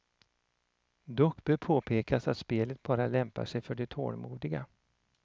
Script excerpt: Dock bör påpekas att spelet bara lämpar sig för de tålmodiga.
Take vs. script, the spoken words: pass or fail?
pass